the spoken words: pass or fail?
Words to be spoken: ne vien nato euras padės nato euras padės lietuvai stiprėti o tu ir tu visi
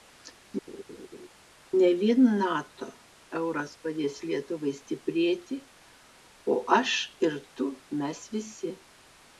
fail